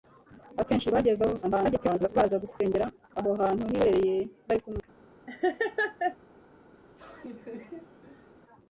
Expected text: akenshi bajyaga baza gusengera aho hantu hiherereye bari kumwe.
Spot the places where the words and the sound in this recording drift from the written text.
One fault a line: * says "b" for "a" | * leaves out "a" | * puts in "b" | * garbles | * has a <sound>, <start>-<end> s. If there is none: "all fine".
* garbles
* has a laugh, 5.3-6.2 s
* has a laugh, 6.8-8.4 s